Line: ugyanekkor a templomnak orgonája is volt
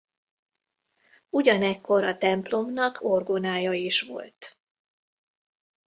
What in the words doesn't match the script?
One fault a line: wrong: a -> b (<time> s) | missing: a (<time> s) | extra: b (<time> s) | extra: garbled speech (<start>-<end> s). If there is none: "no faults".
no faults